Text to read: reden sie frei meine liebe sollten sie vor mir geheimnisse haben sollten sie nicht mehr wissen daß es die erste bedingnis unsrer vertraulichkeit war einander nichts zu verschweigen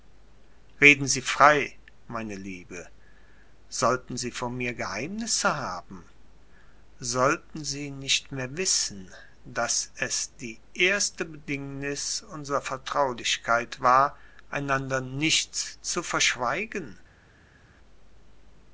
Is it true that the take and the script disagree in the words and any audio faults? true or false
false